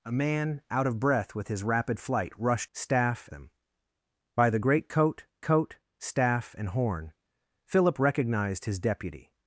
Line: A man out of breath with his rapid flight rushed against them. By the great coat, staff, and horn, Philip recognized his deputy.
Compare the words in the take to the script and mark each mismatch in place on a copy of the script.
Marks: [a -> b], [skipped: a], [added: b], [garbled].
A man out of breath with his rapid flight rushed [against -> staff] them. By the great coat, [added: coat] staff, and horn, Philip recognized his deputy.